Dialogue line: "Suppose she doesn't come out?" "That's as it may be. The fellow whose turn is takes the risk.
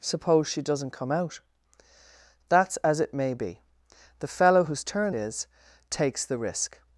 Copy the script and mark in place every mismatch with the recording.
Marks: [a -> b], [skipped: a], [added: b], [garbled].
"Suppose she doesn't come out?" "That's as it may be. The fellow whose turn is takes the risk.